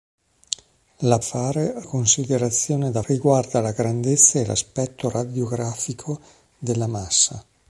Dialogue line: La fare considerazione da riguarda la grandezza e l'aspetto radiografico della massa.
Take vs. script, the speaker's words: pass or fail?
pass